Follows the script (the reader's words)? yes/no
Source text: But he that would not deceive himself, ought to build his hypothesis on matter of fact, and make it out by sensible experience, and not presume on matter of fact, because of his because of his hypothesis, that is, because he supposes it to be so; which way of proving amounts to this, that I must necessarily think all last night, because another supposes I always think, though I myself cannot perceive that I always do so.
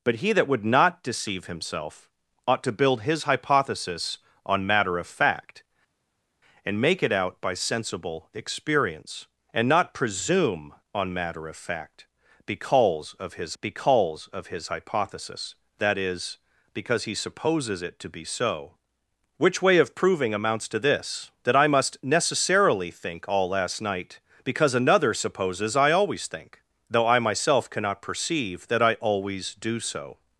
yes